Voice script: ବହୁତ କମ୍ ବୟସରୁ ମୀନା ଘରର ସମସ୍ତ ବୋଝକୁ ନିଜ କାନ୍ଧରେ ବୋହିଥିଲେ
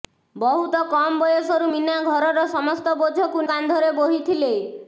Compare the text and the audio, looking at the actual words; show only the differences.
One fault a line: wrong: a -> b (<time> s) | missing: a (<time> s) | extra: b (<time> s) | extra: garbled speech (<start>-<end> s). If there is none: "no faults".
missing: ନିଜ (3.5 s)